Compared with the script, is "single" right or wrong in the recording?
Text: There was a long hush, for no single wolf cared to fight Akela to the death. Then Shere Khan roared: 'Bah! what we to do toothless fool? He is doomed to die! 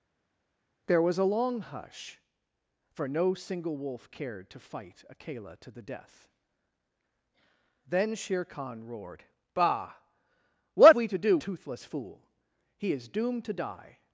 right